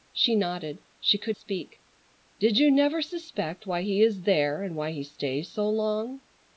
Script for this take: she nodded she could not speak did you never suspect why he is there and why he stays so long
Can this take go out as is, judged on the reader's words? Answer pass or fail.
fail